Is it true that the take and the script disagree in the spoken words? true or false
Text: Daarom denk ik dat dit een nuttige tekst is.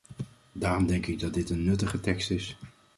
false